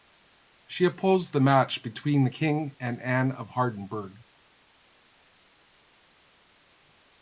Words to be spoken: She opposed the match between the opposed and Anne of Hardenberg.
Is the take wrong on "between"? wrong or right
right